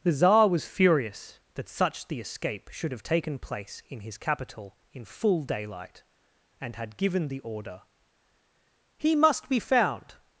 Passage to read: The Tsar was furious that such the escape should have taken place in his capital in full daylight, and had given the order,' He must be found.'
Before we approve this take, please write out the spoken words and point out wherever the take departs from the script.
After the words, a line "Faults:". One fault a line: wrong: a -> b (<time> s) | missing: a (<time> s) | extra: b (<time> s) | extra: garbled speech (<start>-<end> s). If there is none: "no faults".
The Tsar was furious that such the escape should have taken place in his capital in full daylight, and had given the order,' He must be found.'
Faults:
no faults